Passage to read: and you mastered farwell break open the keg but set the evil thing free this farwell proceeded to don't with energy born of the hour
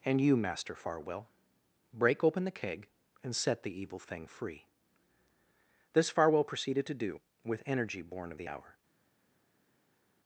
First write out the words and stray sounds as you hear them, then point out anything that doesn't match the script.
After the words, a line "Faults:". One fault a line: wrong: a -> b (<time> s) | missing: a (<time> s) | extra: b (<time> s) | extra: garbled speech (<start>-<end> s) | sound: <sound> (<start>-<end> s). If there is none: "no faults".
and you master farwell break open the keg and set the evil thing free this farwell proceeded to do with energy born of the hour
Faults:
wrong: mastered -> master (0.3 s)
wrong: but -> and (3.2 s)
wrong: don't -> do (6.9 s)